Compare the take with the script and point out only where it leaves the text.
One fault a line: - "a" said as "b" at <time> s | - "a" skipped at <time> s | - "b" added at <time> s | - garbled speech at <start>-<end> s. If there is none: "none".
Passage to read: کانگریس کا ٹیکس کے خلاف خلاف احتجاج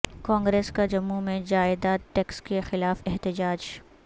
- "جموں میں جائیداد" added at 0.8 s
- "خلاف" skipped at 3.0 s